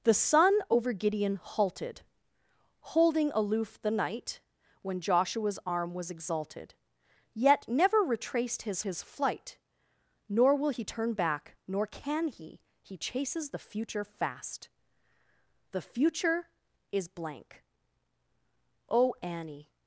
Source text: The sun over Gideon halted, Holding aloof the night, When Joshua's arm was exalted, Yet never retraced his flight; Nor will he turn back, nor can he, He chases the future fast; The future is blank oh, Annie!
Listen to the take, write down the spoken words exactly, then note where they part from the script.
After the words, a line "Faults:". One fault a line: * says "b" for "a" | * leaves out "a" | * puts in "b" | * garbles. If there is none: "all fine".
The sun over Gideon halted, Holding aloof the night, When Joshua's arm was exalted, Yet never retraced his his flight; Nor will he turn back, nor can he, He chases the future fast; The future is blank oh, Annie!
Faults:
* puts in "his"